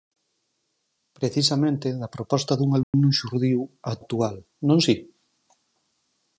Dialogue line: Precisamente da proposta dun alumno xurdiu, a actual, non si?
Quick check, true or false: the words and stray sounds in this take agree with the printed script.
false